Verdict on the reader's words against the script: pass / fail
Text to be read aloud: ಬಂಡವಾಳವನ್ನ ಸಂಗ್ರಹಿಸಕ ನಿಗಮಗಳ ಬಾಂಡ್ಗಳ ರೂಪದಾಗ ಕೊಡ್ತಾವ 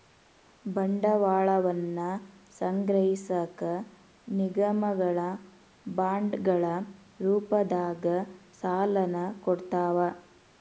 fail